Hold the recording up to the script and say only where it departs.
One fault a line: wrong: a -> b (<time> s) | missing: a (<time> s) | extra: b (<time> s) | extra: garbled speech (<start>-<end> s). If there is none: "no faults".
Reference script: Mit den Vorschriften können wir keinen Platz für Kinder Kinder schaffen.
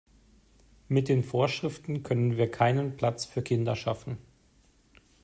missing: Kinder (3.7 s)